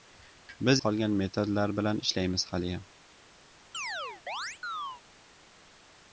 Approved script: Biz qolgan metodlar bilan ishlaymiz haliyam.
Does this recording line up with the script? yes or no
yes